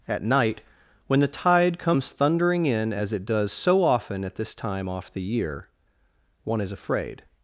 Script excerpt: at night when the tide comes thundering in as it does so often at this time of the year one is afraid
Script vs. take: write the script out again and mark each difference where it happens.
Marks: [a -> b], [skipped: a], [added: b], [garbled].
at night when the tide comes thundering in as it does so often at this time [of -> off] the year one is afraid